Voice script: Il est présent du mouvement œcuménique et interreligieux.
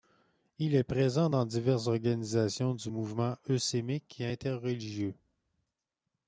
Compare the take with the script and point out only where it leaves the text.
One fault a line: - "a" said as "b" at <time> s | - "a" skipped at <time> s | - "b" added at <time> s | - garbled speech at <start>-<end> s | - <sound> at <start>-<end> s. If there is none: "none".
- "dans diverses organisations" added at 1.3 s